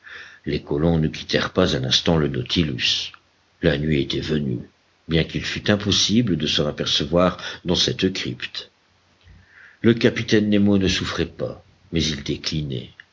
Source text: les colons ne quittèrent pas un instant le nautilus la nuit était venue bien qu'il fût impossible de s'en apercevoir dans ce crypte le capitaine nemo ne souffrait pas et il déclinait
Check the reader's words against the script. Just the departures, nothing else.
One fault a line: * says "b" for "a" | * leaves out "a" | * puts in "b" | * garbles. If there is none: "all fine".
* says "cette" for "ce"
* says "mais" for "et"